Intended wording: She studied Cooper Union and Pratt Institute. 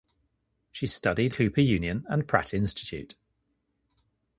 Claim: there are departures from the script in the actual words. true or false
false